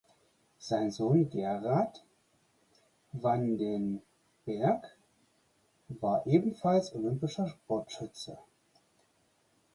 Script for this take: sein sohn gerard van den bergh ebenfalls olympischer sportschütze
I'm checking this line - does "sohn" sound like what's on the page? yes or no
yes